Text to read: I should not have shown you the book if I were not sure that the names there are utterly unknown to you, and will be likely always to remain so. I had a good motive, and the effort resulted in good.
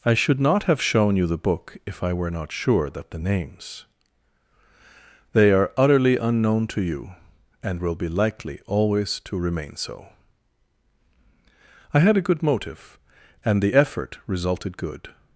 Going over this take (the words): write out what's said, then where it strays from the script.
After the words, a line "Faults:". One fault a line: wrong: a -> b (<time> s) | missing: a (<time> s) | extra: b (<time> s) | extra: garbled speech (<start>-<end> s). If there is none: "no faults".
I should not have shown you the book if I were not sure that the names they are utterly unknown to you, and will be likely always to remain so. I had a good motive, and the effort resulted good.
Faults:
wrong: there -> they (5.3 s)
missing: in (14.8 s)